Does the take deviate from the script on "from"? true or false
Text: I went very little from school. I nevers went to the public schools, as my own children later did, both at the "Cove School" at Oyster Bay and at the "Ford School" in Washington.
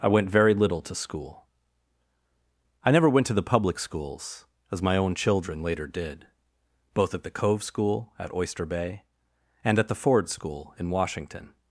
true